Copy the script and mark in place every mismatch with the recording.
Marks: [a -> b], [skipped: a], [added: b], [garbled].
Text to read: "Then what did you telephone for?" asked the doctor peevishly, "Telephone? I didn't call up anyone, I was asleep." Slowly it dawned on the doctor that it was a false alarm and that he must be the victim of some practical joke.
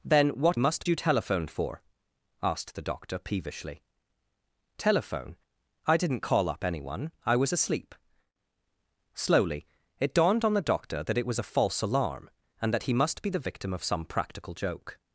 "Then what [did -> must] you telephone for?" asked the doctor peevishly, "Telephone? I didn't call up anyone, I was asleep." Slowly it dawned on the doctor that it was a false alarm and that he must be the victim of some practical joke.